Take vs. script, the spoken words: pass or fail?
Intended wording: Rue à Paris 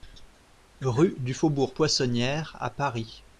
fail